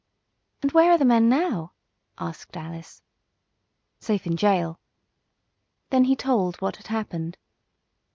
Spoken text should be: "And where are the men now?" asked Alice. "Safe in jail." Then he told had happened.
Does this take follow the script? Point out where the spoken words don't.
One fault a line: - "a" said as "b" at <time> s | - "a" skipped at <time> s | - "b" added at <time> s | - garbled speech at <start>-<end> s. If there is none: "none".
- "what" added at 6.6 s